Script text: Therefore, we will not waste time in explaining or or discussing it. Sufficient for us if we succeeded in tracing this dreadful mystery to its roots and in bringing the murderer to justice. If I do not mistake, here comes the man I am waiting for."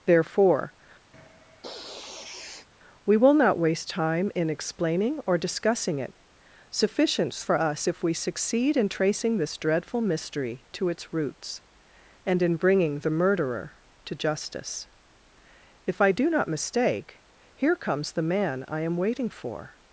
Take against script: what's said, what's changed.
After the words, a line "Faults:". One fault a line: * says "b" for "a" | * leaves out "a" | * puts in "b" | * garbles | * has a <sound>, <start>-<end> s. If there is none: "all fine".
Therefore, we will not waste time in explaining or discussing it. Sufficient for us if we succeed in tracing this dreadful mystery to its roots and in bringing the murderer to justice. If I do not mistake, here comes the man I am waiting for."
Faults:
* has a sniff, 1.1-2.7 s
* leaves out "or"
* says "succeed" for "succeeded"